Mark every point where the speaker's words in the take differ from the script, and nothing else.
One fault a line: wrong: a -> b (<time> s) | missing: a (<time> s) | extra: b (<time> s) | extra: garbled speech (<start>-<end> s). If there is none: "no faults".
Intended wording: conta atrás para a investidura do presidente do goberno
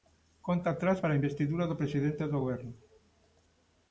no faults